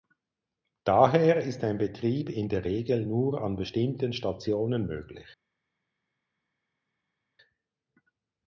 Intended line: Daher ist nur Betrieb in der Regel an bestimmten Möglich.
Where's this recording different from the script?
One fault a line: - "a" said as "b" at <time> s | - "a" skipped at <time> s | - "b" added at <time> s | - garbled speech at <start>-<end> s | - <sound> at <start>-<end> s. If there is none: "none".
- "nur" said as "ein" at 1.6 s
- "nur" added at 3.1 s
- "Stationen" added at 4.1 s